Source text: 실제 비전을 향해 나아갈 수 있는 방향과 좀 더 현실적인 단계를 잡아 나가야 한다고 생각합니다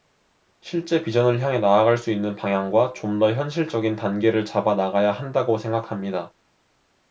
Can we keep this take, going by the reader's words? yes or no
yes